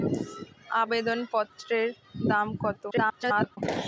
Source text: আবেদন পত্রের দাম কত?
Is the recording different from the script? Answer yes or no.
yes